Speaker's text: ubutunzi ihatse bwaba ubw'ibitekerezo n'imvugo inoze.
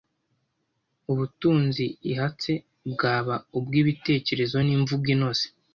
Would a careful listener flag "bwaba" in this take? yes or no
no